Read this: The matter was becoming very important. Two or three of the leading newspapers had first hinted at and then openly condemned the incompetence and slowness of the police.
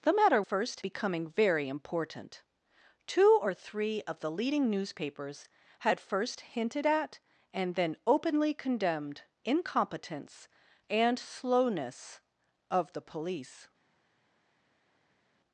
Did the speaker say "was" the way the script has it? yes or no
no